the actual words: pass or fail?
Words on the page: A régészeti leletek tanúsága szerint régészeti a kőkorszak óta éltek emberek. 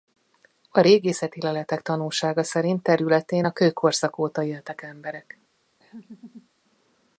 fail